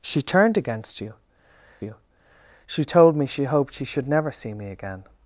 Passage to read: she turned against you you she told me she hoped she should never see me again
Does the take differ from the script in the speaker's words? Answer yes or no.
no